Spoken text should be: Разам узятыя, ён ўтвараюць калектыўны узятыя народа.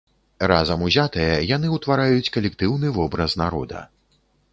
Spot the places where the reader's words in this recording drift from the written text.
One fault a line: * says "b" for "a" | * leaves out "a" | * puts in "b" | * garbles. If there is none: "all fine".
* says "яны" for "ён"
* says "вобраз" for "узятыя"